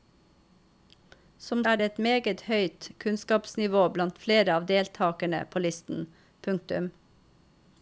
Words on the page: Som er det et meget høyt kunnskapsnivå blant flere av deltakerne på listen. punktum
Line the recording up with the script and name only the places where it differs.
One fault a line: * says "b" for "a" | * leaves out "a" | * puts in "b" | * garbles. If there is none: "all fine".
all fine